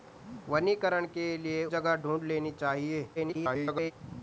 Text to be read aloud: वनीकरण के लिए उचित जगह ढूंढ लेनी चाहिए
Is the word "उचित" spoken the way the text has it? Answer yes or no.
no